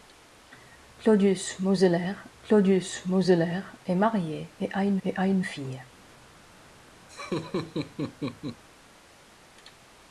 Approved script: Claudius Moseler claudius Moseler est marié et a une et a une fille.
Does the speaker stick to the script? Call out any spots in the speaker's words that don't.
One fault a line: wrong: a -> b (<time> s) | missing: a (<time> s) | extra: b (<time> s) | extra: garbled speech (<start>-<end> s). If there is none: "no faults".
no faults